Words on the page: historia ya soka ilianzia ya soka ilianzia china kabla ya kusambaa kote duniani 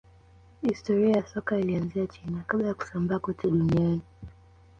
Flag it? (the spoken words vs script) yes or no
yes